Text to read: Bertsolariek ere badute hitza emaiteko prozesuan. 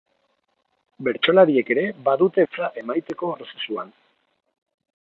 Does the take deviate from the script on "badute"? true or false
false